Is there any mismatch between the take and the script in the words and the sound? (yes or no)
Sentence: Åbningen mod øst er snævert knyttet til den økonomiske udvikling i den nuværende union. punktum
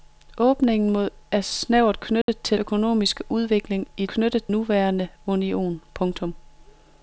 yes